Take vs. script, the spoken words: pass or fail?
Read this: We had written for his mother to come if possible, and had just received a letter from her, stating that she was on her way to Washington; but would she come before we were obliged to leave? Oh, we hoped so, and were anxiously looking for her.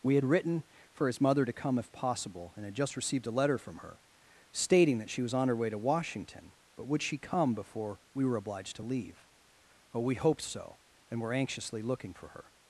pass